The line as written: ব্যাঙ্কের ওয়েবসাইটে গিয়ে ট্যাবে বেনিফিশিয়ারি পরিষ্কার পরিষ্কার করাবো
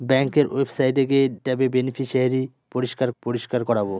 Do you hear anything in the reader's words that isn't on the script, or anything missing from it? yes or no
no